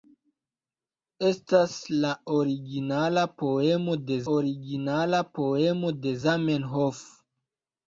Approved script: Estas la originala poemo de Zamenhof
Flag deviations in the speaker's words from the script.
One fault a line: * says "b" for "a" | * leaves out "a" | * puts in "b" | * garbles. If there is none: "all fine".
* puts in "originala poemo de"